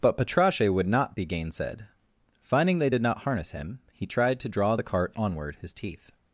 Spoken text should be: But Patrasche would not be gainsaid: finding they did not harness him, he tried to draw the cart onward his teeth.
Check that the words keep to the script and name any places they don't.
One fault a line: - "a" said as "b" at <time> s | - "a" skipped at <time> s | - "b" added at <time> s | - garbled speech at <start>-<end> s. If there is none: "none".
none